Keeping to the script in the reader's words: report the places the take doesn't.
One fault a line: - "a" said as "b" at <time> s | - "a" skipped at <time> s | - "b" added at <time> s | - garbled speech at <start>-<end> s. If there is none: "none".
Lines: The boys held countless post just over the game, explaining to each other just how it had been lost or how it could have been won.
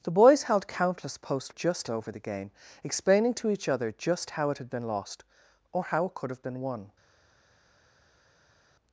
none